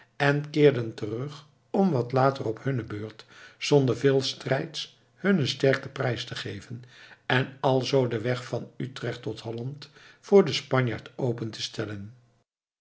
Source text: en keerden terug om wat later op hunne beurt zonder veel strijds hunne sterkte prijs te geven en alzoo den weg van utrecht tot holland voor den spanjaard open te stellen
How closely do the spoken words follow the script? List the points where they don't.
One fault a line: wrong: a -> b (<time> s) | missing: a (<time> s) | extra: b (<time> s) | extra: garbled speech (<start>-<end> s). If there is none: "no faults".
no faults